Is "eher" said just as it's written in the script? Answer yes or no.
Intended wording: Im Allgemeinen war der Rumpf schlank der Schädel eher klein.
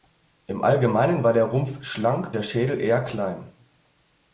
yes